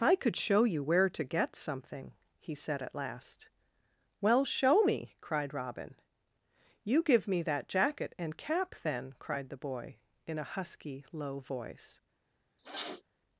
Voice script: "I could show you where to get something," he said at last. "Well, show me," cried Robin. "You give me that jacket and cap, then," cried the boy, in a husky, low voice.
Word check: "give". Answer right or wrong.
right